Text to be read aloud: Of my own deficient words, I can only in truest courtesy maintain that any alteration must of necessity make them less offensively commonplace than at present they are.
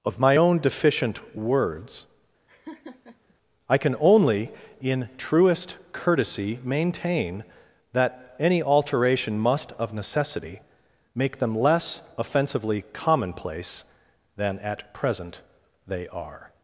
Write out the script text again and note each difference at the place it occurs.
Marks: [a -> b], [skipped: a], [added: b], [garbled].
Of my own deficient words, I can only in truest courtesy maintain that any alteration must of necessity make them less offensively commonplace than at present they are.